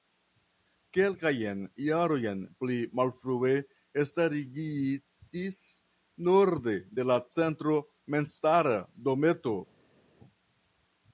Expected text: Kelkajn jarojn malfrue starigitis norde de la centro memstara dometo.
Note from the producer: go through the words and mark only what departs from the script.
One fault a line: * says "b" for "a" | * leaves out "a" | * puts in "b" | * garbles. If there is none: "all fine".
* puts in "pli"